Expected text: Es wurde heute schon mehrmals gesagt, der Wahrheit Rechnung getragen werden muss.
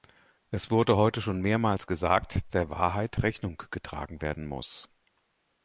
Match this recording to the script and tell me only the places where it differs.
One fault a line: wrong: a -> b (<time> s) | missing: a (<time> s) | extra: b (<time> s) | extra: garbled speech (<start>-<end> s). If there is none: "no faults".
no faults